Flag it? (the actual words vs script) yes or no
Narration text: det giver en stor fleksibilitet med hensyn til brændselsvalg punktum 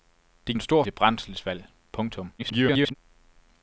yes